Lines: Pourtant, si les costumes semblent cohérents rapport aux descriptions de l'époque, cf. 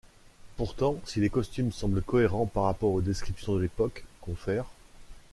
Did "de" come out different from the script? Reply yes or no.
no